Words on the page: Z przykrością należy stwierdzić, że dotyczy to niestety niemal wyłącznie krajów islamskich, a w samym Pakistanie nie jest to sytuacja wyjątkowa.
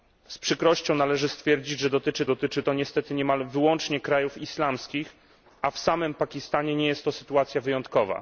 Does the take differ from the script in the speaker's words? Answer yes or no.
yes